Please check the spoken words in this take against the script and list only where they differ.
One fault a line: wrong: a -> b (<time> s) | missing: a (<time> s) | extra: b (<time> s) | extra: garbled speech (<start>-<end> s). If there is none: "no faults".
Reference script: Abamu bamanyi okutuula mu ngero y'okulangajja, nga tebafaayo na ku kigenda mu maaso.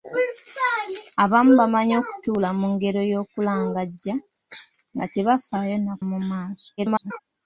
missing: ku kigenda (5.9 s)
extra: garbled speech (6.8-7.2 s)